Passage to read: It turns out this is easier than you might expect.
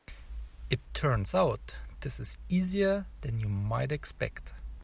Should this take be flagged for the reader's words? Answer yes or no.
no